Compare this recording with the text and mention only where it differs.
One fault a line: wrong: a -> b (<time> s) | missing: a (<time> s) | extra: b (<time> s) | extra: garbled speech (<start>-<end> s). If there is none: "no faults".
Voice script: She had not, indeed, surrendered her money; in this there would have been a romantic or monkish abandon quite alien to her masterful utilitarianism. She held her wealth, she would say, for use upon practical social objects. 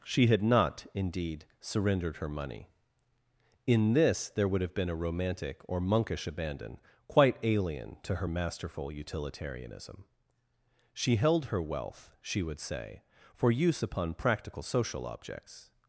no faults